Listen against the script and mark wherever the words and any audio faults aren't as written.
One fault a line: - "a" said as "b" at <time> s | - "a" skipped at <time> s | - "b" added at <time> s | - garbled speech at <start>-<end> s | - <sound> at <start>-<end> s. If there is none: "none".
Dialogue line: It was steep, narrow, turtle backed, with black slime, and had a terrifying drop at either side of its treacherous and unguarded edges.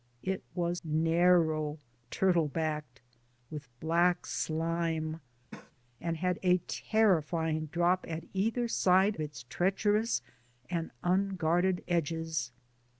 - "steep" skipped at 0.8 s
- cough at 5.5-5.7 s
- "of" skipped at 9.2 s